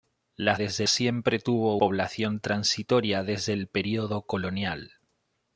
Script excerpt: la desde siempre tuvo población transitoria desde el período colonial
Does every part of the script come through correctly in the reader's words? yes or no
yes